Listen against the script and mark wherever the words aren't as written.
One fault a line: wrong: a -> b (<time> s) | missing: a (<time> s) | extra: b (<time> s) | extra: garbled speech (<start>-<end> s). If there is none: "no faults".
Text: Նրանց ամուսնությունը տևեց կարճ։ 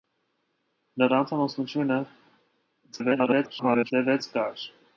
extra: garbled speech (2.9-3.9 s)